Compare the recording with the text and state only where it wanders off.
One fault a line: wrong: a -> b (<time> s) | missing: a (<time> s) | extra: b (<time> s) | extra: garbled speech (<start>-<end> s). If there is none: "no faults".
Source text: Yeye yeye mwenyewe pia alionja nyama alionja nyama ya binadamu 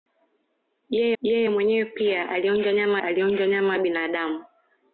no faults